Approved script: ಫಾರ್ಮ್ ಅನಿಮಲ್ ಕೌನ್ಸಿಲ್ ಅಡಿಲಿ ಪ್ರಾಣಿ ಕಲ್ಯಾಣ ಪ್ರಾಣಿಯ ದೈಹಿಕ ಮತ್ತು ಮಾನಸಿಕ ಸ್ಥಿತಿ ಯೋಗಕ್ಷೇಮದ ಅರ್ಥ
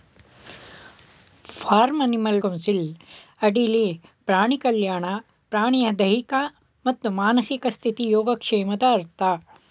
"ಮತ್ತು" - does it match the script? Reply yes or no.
yes